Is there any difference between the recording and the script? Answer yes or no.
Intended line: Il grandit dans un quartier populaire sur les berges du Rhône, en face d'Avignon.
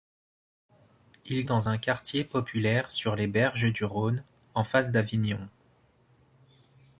yes